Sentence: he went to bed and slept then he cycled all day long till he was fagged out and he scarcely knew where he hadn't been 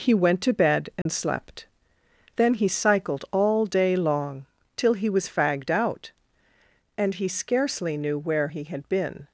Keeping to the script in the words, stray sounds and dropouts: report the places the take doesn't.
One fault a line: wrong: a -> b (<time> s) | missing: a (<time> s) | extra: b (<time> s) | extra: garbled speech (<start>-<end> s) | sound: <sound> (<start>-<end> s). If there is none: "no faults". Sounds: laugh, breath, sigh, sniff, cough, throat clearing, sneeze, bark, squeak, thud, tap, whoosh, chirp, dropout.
sound: dropout (1.0-1.1 s)
wrong: hadn't -> had (8.6 s)